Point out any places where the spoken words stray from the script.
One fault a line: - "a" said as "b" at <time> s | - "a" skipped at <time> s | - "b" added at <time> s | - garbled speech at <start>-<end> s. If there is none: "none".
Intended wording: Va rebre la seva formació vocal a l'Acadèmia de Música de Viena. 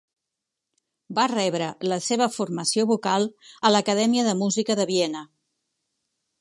none